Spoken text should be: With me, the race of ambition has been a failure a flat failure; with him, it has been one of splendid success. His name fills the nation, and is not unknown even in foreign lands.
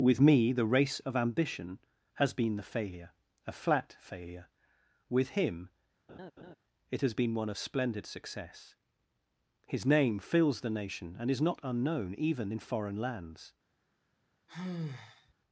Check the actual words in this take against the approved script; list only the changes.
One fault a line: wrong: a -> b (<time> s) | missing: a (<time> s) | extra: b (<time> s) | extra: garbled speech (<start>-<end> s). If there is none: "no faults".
wrong: a -> the (2.5 s)